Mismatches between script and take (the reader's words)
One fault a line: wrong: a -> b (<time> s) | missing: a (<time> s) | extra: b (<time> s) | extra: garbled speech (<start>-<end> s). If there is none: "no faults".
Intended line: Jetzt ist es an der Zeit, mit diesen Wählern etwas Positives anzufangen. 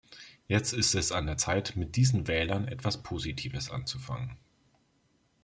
no faults